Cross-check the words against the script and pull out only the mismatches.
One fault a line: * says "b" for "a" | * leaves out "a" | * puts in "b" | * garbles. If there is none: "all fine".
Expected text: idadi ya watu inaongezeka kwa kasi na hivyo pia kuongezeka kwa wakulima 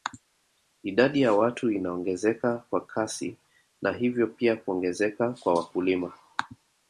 all fine